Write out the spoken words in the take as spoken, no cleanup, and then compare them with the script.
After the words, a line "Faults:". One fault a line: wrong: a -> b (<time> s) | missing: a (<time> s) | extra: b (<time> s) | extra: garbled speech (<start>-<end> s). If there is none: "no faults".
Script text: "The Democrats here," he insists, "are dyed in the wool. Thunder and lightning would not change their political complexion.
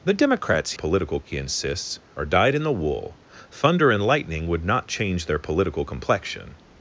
"The Democrats political," he insists, "are dyed in the wool. Thunder and lightning would not change their political complexion.
Faults:
wrong: here -> political (0.7 s)